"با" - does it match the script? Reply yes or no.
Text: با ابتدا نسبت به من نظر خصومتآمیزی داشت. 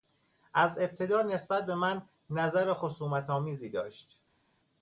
no